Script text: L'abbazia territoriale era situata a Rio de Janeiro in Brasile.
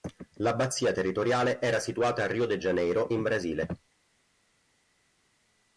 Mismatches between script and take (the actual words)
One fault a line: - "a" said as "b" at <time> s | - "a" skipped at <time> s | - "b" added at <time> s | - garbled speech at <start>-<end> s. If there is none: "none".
none